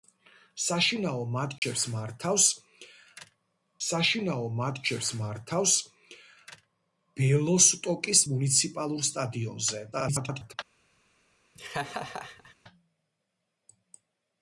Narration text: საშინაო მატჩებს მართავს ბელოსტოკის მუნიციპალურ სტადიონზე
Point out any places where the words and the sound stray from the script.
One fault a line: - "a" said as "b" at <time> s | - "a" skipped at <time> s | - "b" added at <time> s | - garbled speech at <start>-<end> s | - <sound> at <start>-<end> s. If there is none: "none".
- dropout at 1.6-1.6 s
- "საშინაო მატჩებს მართავს" added at 3.9 s
- garbled speech at 9.9-10.5 s
- laugh at 11.5-12.5 s